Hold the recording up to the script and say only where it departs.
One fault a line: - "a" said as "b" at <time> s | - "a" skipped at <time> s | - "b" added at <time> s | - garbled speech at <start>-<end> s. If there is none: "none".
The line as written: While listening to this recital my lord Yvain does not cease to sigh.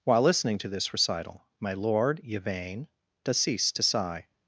- "not" skipped at 3.4 s